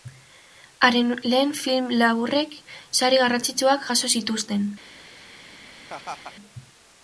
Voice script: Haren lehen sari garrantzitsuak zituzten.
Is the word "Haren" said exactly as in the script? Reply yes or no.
yes